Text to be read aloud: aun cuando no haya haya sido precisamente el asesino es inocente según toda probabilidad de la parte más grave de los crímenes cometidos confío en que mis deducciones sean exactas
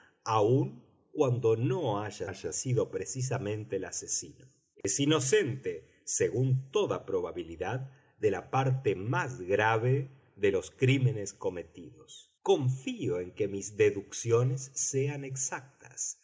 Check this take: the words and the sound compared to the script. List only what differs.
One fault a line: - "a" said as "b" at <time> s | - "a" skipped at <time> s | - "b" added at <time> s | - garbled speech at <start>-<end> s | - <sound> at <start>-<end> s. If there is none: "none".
- dropout at 4.8-4.8 s